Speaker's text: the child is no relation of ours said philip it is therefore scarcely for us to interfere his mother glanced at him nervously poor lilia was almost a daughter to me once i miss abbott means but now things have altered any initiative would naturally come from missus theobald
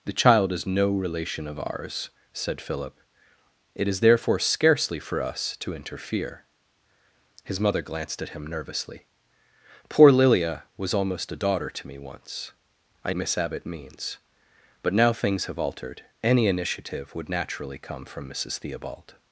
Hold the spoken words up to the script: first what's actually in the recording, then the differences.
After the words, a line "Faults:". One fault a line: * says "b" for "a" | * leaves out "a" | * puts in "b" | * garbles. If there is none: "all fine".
the child is no relation of ours said philip it is therefore scarcely for us to interfere his mother glanced at him nervously poor lilia was almost a daughter to me once i miss abbott means but now things have altered any initiative would naturally come from missus theobald
Faults:
all fine